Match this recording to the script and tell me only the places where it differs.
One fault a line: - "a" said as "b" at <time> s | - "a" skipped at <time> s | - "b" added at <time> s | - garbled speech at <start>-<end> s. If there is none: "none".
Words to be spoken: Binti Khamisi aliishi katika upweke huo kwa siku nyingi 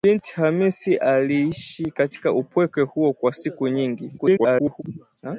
- garbled speech at 4.2-4.8 s